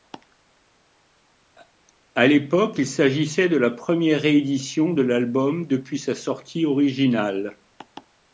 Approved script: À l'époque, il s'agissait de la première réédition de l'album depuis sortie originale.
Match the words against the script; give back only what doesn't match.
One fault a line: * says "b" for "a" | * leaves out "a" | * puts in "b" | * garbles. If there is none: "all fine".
* puts in "sa"